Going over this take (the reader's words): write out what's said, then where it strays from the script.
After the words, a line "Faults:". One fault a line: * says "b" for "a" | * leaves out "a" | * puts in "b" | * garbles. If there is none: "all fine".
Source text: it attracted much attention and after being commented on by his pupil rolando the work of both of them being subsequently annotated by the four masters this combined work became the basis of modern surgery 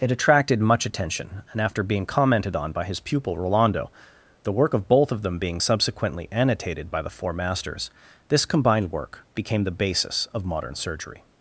it attracted much attention and after being commented on by his pupil rolando the work of both of them being subsequently annotated by the four masters this combined work became the basis of modern surgery
Faults:
all fine